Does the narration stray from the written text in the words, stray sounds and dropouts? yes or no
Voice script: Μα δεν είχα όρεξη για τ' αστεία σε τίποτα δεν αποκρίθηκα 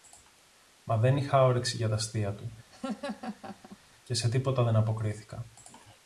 yes